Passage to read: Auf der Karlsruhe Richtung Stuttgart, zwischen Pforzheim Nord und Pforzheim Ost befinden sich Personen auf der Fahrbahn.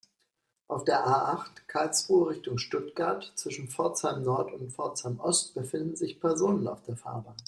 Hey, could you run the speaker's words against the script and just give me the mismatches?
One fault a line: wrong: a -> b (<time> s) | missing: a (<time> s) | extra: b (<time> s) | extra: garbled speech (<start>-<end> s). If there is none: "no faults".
extra: A acht (1.1 s)